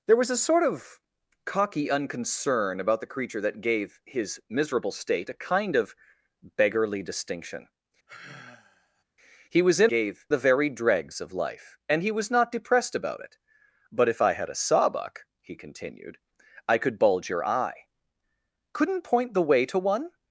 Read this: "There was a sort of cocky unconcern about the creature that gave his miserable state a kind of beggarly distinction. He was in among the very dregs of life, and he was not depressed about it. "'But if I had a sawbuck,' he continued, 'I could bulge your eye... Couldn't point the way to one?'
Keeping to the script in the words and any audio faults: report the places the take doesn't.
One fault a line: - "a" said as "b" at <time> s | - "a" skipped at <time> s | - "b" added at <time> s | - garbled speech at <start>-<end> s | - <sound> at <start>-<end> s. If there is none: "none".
- sigh at 8.1-9.0 s
- "among" said as "gave" at 9.9 s